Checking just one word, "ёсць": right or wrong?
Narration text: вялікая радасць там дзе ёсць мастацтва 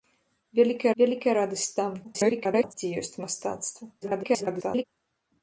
right